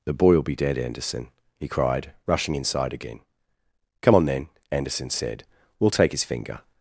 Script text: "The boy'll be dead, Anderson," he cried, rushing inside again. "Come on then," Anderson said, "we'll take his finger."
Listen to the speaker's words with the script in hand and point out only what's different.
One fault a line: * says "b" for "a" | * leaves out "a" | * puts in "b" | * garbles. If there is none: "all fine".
all fine